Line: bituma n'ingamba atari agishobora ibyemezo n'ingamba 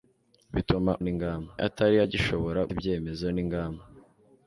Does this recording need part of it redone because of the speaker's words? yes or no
no